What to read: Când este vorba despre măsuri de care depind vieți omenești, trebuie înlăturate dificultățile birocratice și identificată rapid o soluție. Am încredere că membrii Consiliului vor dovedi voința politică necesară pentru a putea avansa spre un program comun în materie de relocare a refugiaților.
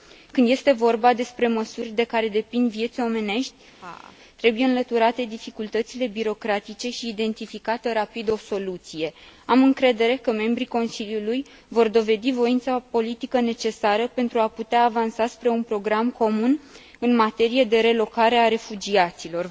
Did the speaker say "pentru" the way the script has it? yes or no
yes